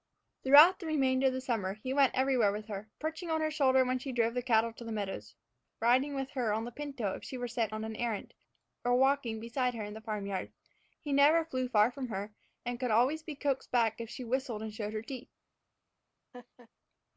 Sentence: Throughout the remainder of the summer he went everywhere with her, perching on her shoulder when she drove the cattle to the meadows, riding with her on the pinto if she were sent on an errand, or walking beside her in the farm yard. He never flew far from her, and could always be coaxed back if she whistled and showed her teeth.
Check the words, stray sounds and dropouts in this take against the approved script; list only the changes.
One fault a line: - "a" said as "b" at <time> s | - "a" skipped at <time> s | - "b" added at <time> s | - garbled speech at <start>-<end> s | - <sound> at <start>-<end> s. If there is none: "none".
- laugh at 16.3-16.7 s